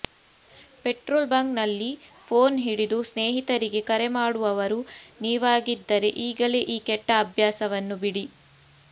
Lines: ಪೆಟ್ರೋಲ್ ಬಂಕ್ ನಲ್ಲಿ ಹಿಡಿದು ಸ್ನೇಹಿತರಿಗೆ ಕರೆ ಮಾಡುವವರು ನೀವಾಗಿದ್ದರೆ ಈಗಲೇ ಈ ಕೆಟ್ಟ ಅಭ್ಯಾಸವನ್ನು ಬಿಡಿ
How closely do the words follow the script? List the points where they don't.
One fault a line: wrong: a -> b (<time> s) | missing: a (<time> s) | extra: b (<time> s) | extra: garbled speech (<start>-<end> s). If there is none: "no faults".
extra: ಫೋನ್ (2.3 s)